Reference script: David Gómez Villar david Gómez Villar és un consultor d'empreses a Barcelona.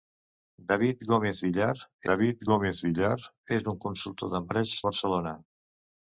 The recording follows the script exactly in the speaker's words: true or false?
true